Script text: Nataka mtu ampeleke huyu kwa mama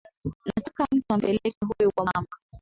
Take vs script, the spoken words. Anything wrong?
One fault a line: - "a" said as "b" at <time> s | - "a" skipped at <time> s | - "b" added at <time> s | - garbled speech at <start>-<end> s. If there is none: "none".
none